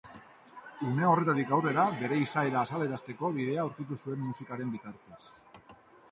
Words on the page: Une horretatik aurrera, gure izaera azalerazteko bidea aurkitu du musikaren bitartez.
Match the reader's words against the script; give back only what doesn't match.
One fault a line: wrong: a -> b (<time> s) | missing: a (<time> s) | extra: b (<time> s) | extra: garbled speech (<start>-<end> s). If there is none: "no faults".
wrong: gure -> bere (2.0 s)
wrong: du -> zuen (4.0 s)